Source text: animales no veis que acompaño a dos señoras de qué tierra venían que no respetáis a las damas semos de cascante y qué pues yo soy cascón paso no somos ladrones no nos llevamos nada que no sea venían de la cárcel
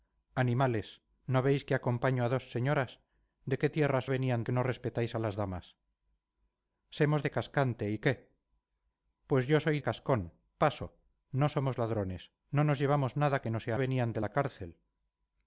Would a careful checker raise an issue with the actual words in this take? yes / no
no